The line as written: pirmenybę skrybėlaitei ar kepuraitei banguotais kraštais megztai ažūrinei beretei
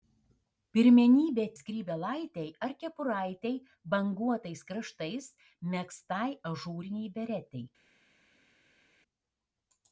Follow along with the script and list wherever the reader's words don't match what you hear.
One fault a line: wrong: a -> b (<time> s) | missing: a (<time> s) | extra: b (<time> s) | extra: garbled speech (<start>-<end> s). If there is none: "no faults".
no faults